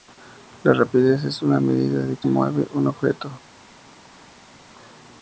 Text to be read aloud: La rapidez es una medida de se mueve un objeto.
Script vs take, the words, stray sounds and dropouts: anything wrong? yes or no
no